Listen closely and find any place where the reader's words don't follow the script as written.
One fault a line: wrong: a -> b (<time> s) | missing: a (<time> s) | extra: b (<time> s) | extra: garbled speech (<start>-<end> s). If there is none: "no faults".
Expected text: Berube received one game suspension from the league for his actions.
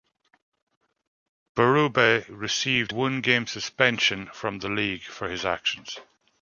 no faults